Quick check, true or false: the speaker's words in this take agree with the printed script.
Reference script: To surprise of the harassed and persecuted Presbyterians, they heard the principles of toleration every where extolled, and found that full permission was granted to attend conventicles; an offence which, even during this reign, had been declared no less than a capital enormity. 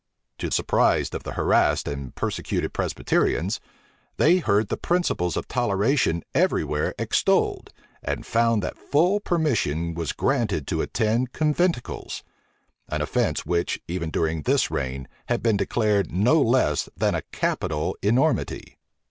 true